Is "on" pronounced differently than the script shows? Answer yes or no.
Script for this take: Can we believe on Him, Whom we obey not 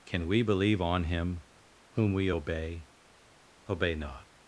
no